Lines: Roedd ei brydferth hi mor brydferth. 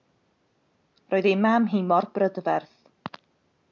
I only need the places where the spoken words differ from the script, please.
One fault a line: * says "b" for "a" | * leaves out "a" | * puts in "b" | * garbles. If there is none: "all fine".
* says "mam" for "brydferth"